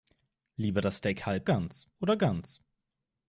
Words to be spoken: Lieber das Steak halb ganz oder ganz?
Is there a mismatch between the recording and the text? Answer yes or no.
no